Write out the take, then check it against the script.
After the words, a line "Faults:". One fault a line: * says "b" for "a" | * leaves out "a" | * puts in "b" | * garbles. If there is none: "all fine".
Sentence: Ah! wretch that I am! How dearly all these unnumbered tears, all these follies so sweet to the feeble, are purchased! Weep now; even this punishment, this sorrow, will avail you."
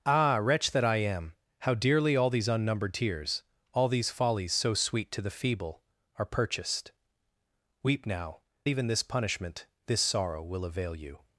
Ah! wretch that I am! How dearly all these unnumbered tears, all these follies so sweet to the feeble, are purchased! Weep now; even this punishment, this sorrow, will avail you."
Faults:
all fine